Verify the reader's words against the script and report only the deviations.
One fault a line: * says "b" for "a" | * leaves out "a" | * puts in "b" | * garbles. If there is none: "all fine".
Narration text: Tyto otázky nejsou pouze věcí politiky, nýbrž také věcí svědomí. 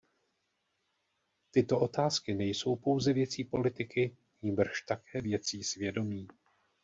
all fine